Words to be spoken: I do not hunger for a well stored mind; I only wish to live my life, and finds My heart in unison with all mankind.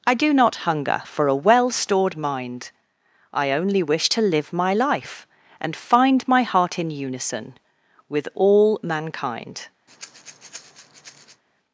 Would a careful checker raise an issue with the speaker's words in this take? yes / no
yes